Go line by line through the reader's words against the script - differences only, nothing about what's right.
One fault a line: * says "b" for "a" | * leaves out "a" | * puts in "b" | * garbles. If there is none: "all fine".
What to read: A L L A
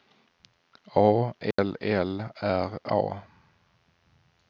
* puts in "R"